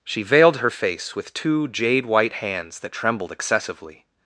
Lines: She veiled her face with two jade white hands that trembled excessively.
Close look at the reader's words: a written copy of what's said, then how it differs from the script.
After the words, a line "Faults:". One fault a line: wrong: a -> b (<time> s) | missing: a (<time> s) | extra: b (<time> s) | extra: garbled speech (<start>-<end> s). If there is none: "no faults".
She veiled her face with two jade white hands that trembled excessively.
Faults:
no faults